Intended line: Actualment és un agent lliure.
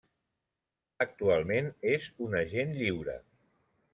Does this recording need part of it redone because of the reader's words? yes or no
no